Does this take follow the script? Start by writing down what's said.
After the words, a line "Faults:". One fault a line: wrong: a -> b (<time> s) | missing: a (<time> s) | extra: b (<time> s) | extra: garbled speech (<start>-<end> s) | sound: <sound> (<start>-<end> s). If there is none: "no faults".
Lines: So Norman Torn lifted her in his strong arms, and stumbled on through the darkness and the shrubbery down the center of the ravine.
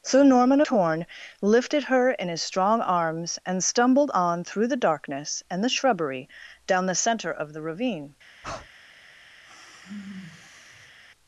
So Norman Torn lifted her in his strong arms, and stumbled on through the darkness and the shrubbery down the center of the ravine.
Faults:
sound: breath (8.4-8.7 s)
sound: sigh (9.4-11.0 s)